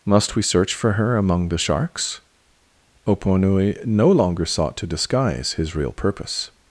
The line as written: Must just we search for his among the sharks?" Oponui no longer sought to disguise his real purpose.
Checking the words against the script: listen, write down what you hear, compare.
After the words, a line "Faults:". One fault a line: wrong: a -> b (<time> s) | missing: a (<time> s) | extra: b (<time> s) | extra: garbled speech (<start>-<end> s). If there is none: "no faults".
Must we search for her among the sharks?" Oponui no longer sought to disguise his real purpose.
Faults:
missing: just (0.3 s)
wrong: his -> her (0.9 s)